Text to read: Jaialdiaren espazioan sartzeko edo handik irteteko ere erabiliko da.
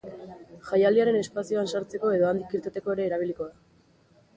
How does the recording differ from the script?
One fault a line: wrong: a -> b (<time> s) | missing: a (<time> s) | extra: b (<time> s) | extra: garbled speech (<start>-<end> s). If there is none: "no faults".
no faults